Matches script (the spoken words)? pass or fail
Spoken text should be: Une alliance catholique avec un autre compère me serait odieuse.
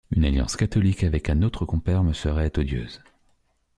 pass